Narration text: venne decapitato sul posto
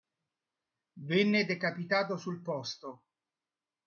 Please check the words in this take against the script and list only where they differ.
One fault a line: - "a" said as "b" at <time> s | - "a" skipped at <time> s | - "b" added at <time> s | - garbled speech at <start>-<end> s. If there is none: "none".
none